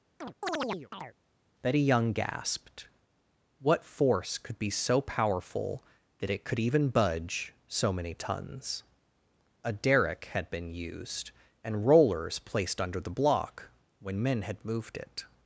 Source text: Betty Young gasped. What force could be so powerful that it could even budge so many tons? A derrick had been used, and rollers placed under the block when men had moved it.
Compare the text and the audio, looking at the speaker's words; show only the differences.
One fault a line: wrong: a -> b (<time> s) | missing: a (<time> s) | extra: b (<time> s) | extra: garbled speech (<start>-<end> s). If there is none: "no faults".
no faults